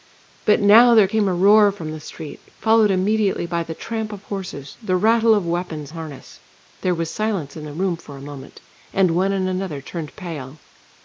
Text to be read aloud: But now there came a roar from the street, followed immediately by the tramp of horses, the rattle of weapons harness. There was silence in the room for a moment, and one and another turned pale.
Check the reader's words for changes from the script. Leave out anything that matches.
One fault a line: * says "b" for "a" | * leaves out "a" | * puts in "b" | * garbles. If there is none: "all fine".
all fine